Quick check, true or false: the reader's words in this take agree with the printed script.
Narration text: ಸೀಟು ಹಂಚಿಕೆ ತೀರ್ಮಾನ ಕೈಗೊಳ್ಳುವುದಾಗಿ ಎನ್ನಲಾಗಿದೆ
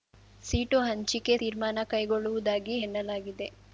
true